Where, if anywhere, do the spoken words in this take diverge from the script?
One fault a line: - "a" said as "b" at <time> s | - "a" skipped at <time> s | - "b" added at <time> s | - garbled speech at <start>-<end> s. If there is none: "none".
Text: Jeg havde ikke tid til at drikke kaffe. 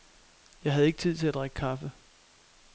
none